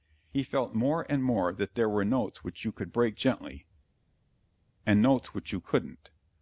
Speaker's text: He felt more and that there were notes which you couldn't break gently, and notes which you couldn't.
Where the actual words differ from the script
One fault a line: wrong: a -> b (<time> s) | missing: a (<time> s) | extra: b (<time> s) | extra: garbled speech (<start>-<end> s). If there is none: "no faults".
extra: more (1.2 s)
wrong: couldn't -> could (2.7 s)